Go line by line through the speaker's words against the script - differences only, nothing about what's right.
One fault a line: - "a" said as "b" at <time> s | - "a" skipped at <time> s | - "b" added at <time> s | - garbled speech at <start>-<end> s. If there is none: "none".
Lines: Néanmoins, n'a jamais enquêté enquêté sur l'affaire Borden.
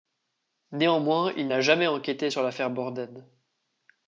- "il" added at 1.4 s
- "enquêté" skipped at 2.3 s